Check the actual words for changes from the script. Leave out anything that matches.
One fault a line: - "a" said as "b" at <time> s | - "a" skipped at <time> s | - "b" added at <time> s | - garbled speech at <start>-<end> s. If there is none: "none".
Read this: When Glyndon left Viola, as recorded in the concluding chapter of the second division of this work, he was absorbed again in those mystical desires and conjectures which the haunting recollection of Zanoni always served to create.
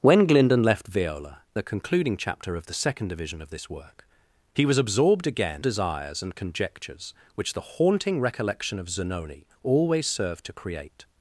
- "as recorded in" skipped at 1.4 s
- "in those mystical" skipped at 5.6 s